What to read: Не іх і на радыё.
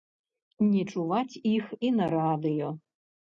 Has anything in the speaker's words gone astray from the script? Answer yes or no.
yes